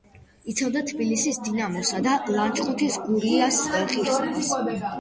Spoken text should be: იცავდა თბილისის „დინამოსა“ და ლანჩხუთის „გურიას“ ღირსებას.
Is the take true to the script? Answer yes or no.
yes